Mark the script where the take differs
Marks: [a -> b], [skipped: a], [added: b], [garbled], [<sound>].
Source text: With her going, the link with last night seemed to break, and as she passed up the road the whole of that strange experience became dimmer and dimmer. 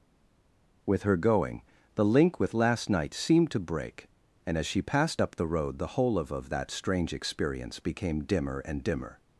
With her going, the link with last night seemed to break, and as she passed up the road the whole of [added: of] that strange experience became dimmer and dimmer.